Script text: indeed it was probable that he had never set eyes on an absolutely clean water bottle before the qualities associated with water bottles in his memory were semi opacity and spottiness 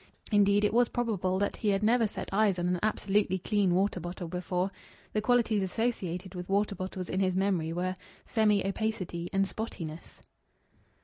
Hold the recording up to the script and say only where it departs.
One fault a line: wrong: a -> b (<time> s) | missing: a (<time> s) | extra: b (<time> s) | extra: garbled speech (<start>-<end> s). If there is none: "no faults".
no faults